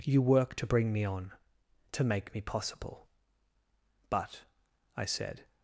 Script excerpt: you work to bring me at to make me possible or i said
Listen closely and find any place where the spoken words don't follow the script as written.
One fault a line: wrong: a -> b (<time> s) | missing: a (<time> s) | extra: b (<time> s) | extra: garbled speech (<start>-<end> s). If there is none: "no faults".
wrong: at -> on (1.0 s)
wrong: or -> but (4.1 s)